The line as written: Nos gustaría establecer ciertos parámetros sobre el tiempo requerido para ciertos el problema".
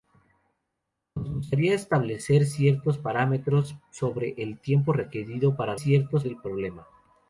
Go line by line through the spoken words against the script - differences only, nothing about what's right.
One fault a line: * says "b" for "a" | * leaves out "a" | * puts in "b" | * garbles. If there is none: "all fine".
all fine